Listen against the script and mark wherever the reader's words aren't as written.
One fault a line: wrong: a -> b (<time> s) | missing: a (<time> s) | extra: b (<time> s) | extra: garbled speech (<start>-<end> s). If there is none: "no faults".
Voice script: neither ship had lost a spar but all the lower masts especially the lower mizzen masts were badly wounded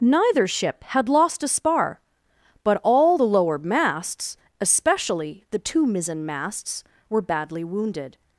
wrong: lower -> two (5.6 s)